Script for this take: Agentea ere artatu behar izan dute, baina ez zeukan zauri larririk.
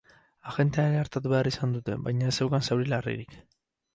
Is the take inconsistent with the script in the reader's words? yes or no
no